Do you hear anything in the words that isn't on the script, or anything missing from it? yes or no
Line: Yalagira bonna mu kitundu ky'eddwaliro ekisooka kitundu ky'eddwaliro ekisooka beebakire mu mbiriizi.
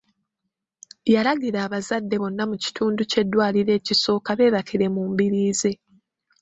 yes